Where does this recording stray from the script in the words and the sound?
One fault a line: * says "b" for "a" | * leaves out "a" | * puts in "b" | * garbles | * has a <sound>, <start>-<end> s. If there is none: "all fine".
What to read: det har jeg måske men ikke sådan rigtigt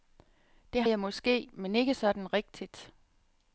* leaves out "har"